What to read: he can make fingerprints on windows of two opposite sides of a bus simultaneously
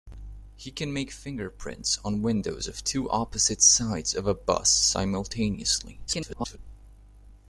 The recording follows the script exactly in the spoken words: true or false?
false